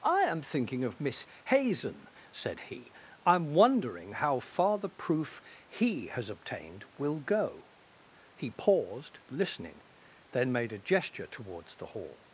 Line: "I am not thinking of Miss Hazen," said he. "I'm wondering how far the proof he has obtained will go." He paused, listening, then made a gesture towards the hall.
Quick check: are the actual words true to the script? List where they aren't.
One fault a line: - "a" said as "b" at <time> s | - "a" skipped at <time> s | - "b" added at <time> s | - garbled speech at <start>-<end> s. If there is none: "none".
- "not" skipped at 0.4 s